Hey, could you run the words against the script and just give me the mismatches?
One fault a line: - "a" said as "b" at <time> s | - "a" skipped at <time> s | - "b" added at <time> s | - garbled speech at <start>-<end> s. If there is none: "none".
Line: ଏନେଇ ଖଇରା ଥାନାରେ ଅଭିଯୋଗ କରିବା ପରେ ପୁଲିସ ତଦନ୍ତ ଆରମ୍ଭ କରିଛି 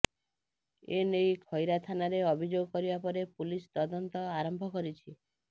none